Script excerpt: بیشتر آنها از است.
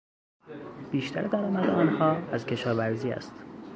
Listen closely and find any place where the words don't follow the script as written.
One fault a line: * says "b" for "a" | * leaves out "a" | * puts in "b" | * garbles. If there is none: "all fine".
* puts in "درآمد"
* puts in "کشاورزی"